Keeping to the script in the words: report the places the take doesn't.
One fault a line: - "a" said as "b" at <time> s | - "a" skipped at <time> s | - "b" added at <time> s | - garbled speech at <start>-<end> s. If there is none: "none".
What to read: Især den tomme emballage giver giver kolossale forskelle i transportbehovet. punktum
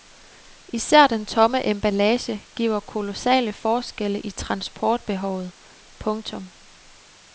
- "giver" skipped at 2.8 s